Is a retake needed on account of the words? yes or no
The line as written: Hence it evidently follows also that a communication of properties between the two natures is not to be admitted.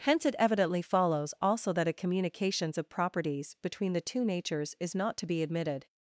yes